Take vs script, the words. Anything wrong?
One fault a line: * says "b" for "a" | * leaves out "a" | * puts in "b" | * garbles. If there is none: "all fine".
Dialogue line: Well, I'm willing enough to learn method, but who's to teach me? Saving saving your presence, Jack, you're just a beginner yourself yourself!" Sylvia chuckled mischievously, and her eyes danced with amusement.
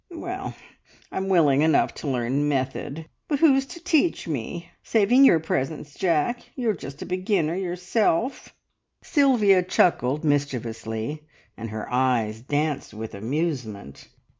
* leaves out "saving"
* leaves out "yourself"